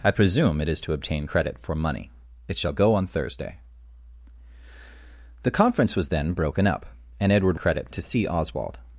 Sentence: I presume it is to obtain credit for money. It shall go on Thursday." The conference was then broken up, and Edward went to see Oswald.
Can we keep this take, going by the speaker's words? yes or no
no